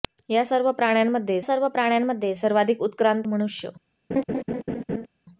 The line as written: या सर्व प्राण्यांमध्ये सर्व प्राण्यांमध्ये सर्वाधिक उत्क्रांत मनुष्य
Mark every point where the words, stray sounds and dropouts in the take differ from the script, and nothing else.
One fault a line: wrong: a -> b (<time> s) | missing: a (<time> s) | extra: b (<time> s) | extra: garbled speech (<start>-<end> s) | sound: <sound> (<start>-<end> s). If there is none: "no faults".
sound: laugh (4.1-5.1 s)